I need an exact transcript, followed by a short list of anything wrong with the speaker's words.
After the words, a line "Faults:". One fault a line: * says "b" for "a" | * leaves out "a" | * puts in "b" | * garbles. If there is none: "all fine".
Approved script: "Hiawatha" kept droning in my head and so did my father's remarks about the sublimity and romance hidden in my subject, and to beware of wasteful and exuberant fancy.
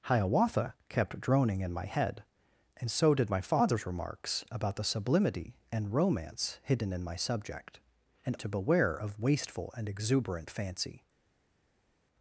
"Hiawatha" kept droning in my head and so did my father's remarks about the sublimity and romance hidden in my subject, and to beware of wasteful and exuberant fancy.
Faults:
all fine